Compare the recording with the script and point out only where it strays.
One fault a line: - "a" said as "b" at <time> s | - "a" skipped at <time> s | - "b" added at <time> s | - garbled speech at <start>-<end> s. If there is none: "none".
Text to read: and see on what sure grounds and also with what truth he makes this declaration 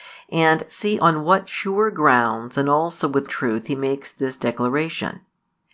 - "what" skipped at 3.3 s